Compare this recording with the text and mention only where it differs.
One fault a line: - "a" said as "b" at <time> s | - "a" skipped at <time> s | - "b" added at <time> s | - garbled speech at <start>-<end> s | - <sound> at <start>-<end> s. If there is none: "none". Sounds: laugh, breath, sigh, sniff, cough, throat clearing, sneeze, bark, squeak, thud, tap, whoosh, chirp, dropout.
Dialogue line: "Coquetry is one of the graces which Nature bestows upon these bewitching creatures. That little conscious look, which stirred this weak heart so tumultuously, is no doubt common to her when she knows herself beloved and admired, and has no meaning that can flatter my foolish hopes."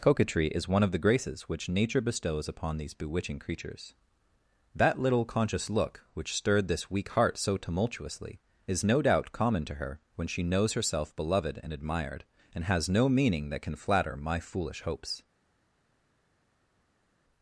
none